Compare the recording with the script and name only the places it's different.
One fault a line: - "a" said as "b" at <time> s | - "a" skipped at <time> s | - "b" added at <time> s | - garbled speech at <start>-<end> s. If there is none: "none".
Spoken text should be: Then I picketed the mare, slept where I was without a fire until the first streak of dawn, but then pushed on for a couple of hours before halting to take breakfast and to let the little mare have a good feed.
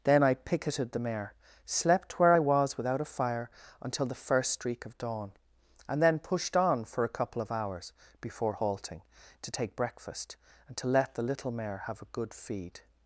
- "but" said as "and" at 5.9 s